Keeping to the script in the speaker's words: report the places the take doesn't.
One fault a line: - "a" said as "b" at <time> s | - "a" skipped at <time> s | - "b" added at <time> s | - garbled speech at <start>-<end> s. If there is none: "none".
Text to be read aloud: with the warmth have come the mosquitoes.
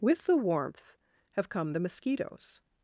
none